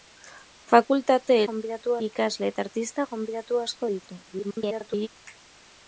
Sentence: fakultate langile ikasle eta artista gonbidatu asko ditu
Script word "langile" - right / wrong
wrong